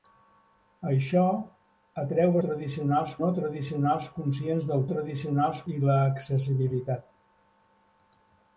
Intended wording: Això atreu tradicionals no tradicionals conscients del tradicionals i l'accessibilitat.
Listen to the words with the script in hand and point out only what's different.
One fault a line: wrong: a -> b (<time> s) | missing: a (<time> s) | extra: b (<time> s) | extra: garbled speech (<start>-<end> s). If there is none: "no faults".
no faults